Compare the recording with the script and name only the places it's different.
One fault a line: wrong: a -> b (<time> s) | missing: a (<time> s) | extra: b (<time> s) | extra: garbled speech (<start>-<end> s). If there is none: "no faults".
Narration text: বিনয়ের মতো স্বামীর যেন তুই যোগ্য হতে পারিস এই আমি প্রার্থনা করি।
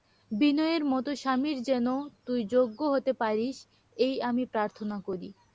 no faults